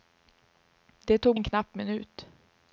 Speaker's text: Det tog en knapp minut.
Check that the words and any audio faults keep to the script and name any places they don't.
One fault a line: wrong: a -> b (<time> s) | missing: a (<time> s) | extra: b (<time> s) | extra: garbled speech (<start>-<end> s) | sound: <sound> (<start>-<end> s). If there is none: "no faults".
no faults